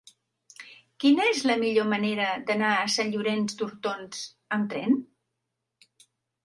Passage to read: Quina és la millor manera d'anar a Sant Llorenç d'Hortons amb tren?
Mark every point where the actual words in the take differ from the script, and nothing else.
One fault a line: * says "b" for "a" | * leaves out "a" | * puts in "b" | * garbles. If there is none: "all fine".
all fine